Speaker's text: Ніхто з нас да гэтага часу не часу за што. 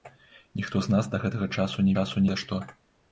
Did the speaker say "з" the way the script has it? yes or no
yes